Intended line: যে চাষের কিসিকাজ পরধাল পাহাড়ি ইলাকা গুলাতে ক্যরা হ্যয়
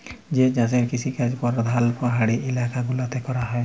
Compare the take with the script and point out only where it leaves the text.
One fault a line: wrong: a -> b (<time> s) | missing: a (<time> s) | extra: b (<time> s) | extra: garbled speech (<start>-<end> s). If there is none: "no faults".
no faults